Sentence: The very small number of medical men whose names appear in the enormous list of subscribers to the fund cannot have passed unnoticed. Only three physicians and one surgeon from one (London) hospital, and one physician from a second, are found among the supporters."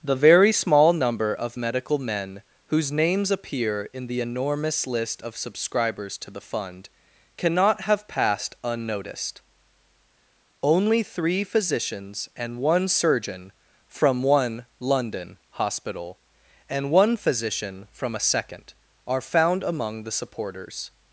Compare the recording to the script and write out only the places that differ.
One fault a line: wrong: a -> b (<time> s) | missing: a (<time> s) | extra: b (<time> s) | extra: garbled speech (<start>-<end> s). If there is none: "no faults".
no faults